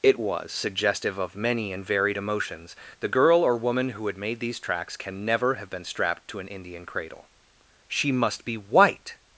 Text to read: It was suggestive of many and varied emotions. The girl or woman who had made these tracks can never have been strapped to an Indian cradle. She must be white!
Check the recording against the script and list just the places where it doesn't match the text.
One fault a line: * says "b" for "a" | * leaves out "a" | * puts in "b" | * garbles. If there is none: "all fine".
all fine